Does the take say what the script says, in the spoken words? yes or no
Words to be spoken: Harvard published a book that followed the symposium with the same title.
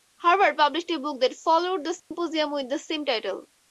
yes